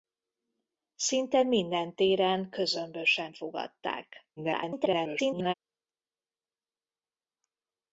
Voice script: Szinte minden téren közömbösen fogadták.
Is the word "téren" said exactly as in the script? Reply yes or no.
yes